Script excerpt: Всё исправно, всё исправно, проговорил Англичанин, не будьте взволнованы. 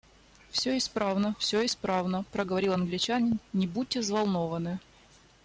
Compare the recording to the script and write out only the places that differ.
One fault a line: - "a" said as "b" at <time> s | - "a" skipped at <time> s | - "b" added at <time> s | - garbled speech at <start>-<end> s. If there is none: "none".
none